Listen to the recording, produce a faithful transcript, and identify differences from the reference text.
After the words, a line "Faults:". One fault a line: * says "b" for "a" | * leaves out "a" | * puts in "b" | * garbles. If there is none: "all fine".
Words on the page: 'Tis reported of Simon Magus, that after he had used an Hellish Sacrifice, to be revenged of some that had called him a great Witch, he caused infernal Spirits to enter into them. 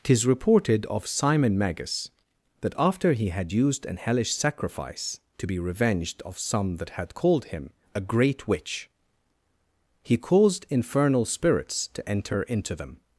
'Tis reported of Simon Magus, that after he had used an Hellish Sacrifice, to be revenged of some that had called him a great Witch, he caused infernal Spirits to enter into them.
Faults:
all fine